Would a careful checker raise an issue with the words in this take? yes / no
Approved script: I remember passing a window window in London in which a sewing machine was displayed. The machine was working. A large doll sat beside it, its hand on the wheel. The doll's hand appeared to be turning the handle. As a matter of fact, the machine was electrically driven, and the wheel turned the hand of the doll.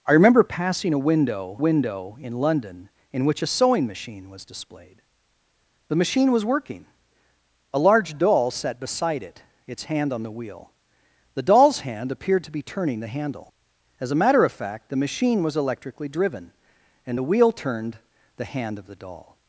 no